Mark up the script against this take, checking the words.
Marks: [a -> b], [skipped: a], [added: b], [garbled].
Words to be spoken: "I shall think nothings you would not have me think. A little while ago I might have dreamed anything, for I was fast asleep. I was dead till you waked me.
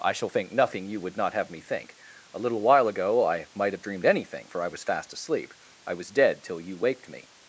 "I shall think [nothings -> nothing] you would not have me think. A little while ago I might have dreamed anything, for I was fast asleep. I was dead till you waked me.